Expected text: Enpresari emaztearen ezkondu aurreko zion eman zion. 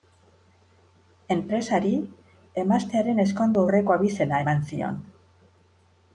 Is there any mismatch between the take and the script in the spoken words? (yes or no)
yes